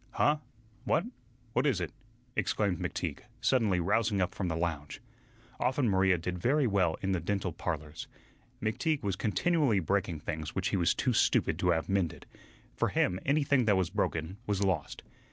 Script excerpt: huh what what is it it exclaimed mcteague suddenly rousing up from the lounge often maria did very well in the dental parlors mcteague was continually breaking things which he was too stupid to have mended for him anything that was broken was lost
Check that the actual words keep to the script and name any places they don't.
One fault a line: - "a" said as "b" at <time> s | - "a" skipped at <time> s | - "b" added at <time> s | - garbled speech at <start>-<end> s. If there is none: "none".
- "it" skipped at 1.9 s